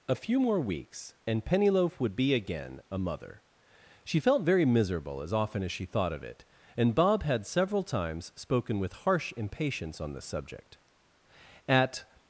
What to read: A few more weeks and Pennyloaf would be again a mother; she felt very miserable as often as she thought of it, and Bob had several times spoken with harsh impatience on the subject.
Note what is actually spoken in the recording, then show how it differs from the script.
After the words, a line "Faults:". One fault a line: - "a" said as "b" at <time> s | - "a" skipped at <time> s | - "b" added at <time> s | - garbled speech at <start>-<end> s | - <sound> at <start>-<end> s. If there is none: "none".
A few more weeks and Pennyloaf would be again a mother; she felt very miserable as often as she thought of it, and Bob had several times spoken with harsh impatience on the subject. At
Faults:
- "At" added at 11.7 s